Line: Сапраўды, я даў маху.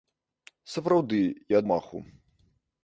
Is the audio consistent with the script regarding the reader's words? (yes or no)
no